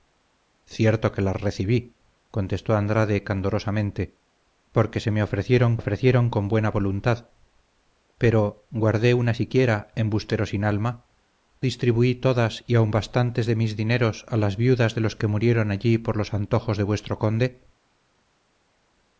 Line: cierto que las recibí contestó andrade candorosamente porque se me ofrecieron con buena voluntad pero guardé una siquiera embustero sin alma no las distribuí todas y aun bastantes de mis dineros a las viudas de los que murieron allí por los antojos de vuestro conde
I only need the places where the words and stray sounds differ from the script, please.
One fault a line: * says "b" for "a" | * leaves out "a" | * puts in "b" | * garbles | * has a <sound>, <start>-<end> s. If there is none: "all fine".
* puts in "ofrecieron"
* leaves out "no las"